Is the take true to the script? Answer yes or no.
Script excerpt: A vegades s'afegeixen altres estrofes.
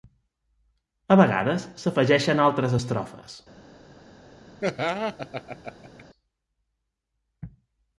yes